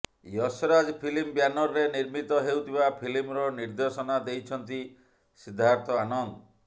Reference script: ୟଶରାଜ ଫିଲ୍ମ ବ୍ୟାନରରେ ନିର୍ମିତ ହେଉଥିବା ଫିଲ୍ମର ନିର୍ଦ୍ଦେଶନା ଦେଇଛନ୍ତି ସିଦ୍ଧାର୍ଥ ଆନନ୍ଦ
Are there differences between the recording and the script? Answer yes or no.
no